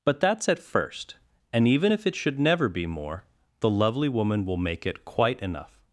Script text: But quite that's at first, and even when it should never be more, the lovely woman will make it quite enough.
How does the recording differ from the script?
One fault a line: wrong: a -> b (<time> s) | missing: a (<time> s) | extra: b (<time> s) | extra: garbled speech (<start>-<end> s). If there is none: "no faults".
missing: quite (0.2 s)
wrong: when -> if (1.9 s)